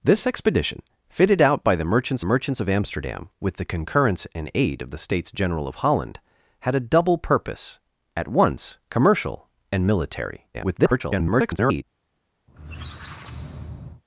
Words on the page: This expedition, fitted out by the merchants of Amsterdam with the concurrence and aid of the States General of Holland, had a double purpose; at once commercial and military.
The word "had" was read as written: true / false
true